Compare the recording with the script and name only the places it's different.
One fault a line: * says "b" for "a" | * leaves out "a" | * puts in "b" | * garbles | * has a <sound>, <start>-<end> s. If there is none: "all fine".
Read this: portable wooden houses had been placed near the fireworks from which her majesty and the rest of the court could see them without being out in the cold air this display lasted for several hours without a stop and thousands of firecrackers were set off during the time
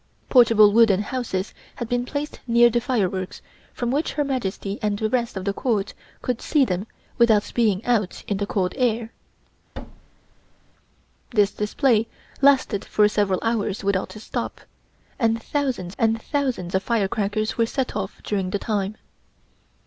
* has a thud, 9.7-10.7 s
* puts in "and thousands"